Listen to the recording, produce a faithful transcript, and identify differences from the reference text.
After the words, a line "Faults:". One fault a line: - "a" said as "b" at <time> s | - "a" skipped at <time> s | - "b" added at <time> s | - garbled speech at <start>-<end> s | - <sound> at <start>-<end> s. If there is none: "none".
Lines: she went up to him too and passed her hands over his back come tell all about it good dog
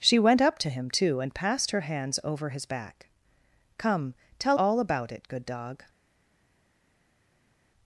she went up to him too and passed her hands over his back come tell all about it good dog
Faults:
none